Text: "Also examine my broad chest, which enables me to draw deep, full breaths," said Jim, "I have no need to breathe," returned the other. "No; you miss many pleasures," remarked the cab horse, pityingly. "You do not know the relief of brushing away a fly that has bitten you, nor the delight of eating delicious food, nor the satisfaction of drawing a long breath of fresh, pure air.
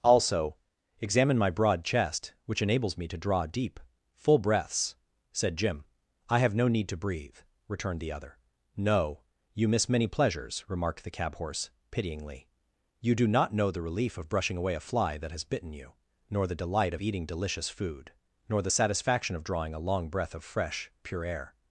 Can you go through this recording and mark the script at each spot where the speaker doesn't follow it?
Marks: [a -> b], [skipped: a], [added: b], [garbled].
"Also examine my broad chest, which enables me to draw deep, full breaths," said Jim, "I have no need to breathe," returned the other. "No; you miss many pleasures," remarked the cab horse, pityingly. "You do not know the relief of brushing away a fly that has bitten you, nor the delight of eating delicious food, nor the satisfaction of drawing a long breath of fresh, pure air.